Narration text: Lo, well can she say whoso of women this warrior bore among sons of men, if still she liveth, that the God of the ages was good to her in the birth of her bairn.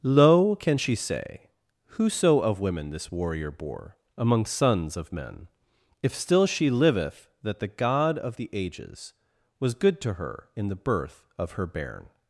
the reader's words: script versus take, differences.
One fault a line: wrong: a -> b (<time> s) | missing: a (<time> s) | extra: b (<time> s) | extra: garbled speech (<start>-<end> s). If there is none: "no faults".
missing: well (0.6 s)